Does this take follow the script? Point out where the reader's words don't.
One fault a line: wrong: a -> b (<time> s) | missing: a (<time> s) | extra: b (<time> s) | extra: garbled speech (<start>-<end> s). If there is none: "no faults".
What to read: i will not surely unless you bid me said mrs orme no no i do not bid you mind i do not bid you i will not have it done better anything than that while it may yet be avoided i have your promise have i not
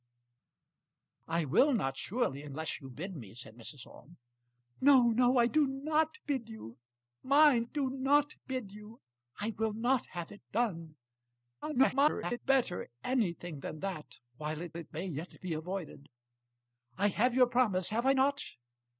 missing: i (7.7 s)
extra: garbled speech (11.6-12.4 s)
extra: it (14.8 s)